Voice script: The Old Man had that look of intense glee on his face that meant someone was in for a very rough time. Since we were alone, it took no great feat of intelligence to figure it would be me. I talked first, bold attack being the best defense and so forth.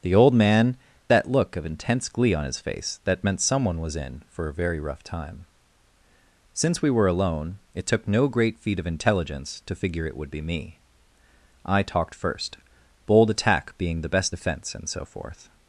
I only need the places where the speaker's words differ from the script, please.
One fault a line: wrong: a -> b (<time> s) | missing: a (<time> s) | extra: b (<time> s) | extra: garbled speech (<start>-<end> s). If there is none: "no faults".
missing: had (0.8 s)